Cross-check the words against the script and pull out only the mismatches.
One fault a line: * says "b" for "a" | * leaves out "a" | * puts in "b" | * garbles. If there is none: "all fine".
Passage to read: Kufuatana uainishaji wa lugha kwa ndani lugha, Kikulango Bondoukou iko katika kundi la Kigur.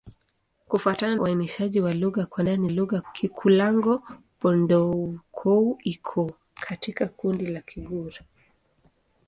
all fine